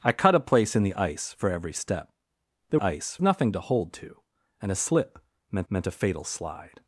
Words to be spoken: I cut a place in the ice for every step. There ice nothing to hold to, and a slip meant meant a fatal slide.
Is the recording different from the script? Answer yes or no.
no